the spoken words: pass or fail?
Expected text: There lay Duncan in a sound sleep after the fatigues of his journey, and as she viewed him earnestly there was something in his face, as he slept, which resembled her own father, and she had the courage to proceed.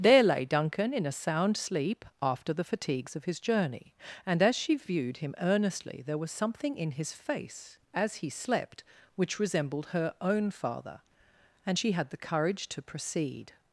pass